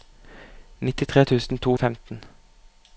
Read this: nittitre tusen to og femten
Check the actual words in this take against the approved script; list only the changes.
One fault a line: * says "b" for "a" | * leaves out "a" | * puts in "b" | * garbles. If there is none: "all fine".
all fine